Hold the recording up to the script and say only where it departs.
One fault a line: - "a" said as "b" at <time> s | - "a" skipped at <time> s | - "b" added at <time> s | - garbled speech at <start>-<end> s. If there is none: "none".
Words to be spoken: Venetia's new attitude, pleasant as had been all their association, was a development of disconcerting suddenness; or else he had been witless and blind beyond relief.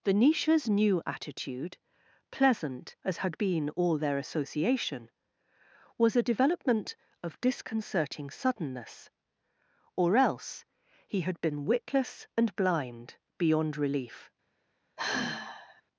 none